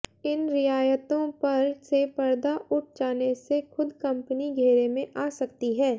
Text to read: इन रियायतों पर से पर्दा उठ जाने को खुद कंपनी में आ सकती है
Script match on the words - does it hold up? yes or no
no